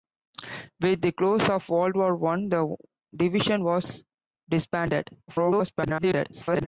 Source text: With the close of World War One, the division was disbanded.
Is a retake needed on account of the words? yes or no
yes